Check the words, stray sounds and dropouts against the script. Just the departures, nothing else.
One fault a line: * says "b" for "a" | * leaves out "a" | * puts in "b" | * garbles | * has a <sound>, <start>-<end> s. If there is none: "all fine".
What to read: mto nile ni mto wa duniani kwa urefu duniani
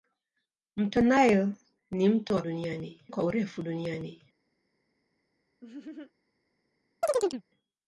* has a laugh, 5.6-6.1 s
* has a chirp, 7.0-7.4 s